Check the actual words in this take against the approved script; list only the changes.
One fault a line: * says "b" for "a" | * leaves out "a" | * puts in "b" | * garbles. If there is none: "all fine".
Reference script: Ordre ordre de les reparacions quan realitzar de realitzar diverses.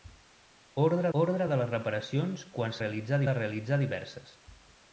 all fine